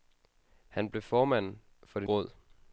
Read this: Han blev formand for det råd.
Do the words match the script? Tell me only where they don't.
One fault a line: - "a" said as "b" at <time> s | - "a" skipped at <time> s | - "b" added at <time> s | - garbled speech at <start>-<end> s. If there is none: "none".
none